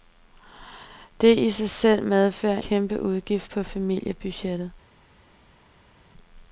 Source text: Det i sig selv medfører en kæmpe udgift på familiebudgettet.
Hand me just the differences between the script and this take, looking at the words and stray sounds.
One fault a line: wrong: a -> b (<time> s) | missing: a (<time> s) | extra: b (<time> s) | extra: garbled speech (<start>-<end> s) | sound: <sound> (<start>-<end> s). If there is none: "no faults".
missing: en (2.6 s)